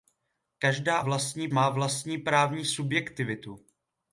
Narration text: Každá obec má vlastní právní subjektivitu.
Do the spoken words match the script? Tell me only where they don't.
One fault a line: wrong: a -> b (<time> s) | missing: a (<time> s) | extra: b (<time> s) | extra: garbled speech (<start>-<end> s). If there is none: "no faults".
wrong: obec -> vlastní (1.0 s)